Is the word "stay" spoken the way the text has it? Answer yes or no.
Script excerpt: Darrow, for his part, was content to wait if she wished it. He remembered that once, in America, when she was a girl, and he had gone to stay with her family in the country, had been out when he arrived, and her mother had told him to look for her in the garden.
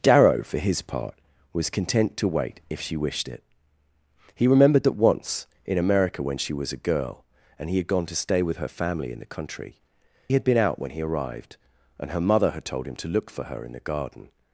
yes